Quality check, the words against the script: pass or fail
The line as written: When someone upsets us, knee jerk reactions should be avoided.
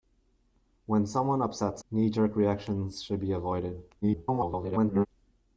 fail